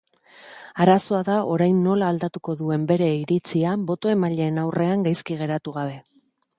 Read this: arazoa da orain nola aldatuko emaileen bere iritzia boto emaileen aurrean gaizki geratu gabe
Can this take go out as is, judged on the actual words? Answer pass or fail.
fail